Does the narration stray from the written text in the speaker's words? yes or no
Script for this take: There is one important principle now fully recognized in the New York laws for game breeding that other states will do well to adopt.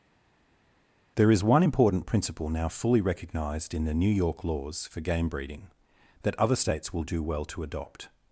no